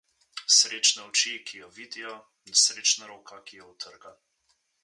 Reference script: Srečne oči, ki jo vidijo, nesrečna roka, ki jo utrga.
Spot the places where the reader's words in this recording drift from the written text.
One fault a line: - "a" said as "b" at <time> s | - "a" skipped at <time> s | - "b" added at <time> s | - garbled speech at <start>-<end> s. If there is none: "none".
none